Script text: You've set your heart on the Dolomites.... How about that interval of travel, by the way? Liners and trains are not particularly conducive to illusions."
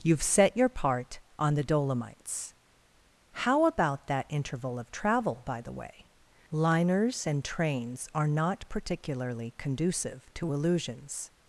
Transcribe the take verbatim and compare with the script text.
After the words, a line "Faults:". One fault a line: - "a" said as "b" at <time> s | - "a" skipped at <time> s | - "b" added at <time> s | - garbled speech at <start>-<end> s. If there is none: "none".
You've set your part on the Dolomites.... How about that interval of travel, by the way? Liners and trains are not particularly conducive to illusions."
Faults:
- "heart" said as "part" at 0.7 s